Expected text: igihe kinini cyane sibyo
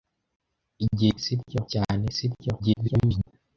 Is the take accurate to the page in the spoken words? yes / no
no